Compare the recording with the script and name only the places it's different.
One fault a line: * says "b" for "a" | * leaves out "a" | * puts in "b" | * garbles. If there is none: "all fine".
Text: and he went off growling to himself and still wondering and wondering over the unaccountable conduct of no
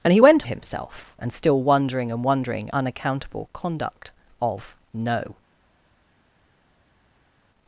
* leaves out "off growling to"
* leaves out "over the"